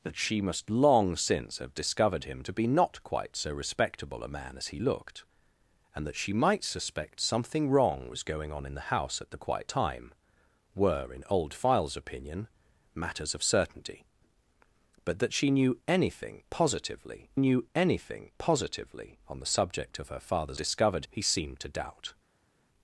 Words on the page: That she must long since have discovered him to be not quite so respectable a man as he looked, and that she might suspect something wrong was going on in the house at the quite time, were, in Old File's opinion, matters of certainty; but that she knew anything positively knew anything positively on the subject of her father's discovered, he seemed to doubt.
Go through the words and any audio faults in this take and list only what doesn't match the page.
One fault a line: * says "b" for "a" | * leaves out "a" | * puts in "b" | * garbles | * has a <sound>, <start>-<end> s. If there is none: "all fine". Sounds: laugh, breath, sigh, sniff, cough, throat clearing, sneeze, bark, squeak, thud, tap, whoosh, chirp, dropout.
all fine